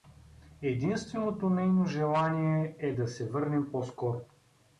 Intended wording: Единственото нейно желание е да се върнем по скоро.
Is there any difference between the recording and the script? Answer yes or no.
no